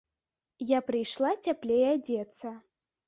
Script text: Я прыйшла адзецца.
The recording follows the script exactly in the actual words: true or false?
false